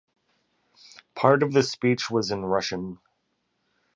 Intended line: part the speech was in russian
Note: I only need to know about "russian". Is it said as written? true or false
true